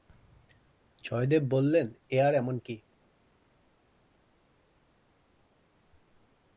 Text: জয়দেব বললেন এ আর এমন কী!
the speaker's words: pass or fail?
pass